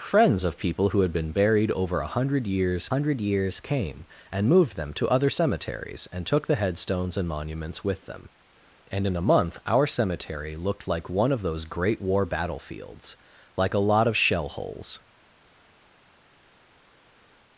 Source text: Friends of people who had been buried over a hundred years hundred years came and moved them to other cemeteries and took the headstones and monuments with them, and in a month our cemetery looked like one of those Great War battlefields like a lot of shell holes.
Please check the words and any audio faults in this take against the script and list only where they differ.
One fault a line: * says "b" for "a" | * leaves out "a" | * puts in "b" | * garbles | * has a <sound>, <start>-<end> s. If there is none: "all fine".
all fine